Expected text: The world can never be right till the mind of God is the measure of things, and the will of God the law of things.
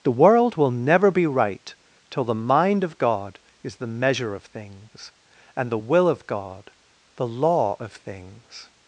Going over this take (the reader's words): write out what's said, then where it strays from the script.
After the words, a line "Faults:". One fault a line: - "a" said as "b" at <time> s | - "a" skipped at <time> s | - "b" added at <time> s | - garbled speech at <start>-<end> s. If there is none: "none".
The world will never be right till the mind of God is the measure of things, and the will of God the law of things.
Faults:
- "can" said as "will" at 0.6 s